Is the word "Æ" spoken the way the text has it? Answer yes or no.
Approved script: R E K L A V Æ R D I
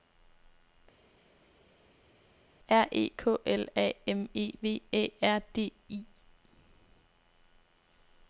yes